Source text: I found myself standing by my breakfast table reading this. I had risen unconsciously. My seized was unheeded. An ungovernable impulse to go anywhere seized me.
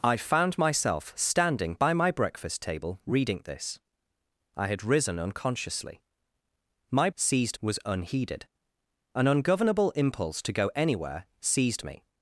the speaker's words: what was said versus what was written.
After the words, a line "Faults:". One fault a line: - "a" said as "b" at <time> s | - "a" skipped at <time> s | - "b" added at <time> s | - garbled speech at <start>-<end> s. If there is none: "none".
I found myself standing by my breakfast table reading this. I had risen unconsciously. My seized was unheeded. An ungovernable impulse to go anywhere seized me.
Faults:
none